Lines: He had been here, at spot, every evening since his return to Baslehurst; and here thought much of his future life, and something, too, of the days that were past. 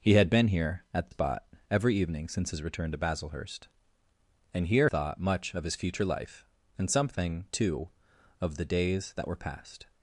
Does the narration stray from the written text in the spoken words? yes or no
no